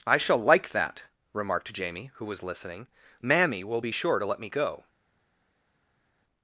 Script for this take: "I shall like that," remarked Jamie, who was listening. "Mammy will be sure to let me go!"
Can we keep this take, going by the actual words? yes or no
yes